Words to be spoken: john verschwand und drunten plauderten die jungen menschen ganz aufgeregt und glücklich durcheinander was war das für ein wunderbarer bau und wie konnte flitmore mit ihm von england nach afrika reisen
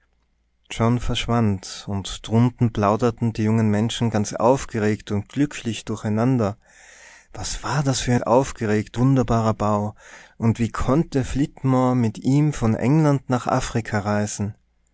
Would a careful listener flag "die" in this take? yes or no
no